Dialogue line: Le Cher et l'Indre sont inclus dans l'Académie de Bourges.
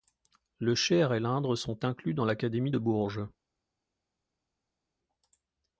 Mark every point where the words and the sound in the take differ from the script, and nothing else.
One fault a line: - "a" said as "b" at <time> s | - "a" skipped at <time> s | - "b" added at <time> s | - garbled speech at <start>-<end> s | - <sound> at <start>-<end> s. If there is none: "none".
none